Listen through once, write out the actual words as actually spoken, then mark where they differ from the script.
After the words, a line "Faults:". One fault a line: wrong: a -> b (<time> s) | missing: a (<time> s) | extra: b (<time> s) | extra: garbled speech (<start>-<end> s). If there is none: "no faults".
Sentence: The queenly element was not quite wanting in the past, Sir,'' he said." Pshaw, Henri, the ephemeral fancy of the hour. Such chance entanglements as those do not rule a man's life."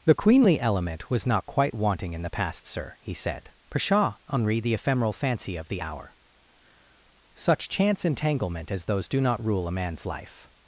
The queenly element was not quite wanting in the past, Sir,'' he said." Pshaw, Henri, the ephemeral fancy of the hour. Such chance entanglement as those do not rule a man's life."
Faults:
wrong: entanglements -> entanglement (8.0 s)